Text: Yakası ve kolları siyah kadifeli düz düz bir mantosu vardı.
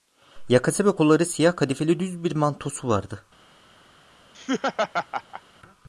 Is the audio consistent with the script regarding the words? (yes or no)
no